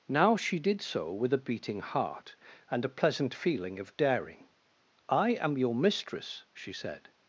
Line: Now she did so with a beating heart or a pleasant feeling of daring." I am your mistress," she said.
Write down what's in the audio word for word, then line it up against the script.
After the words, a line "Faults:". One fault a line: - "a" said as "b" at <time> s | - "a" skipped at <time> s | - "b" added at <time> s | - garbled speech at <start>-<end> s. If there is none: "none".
Now she did so with a beating heart and a pleasant feeling of daring." I am your mistress," she said.
Faults:
- "or" said as "and" at 2.7 s